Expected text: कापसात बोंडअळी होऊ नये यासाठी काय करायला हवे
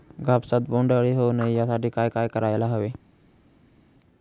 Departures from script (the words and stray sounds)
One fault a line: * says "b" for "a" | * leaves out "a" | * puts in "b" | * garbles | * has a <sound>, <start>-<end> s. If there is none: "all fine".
* puts in "काय"